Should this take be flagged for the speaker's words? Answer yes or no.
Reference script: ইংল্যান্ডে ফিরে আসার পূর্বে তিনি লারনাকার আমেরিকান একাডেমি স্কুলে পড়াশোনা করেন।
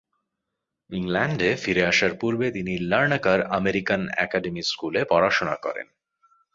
no